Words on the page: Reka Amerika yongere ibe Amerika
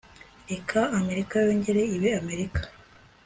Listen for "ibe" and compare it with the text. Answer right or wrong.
right